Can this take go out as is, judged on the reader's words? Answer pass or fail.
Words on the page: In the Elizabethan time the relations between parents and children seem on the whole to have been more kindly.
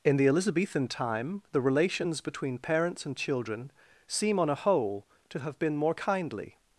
fail